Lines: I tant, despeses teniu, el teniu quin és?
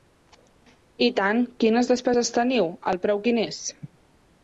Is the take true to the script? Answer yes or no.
no